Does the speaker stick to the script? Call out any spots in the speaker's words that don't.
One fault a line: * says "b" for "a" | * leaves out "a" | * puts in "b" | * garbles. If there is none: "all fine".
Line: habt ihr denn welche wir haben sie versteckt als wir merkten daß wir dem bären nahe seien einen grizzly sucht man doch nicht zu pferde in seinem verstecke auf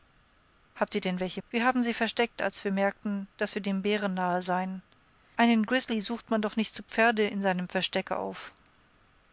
all fine